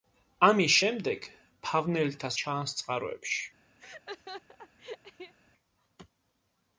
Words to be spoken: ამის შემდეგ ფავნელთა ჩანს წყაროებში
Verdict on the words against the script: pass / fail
pass